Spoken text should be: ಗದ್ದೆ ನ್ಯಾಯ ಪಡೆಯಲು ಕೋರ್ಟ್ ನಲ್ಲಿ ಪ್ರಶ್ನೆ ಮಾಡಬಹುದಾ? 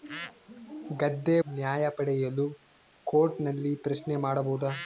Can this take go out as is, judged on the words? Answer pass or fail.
pass